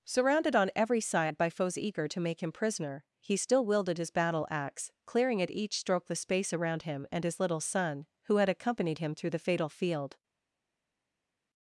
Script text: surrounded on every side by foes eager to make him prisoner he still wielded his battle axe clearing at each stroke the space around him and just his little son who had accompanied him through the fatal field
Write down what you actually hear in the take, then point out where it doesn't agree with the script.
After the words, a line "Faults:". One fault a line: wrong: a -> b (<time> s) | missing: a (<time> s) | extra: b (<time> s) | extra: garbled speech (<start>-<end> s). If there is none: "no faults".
surrounded on every side by foes eager to make him prisoner he still wielded his battle axe clearing at each stroke the space around him and his little son who had accompanied him through the fatal field
Faults:
missing: just (7.2 s)